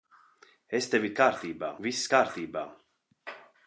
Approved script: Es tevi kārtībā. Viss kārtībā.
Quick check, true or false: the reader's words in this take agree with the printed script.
true